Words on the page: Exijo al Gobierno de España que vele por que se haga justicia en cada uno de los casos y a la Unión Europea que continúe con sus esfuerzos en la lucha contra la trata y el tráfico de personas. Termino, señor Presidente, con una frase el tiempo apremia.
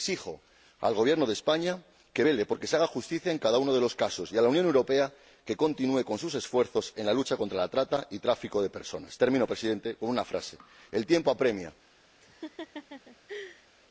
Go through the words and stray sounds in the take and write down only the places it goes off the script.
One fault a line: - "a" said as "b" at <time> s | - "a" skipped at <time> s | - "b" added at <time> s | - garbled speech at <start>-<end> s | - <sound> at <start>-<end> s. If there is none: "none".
- laugh at 12.2-13.7 s